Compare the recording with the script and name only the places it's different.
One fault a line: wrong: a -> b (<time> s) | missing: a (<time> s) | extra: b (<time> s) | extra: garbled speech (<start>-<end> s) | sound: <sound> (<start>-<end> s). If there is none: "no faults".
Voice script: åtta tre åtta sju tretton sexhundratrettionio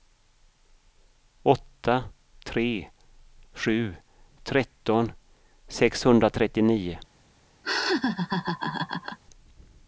missing: åtta (2.9 s)
sound: laugh (7.6-9.2 s)